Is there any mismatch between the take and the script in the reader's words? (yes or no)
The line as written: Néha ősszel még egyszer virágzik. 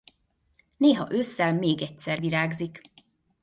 no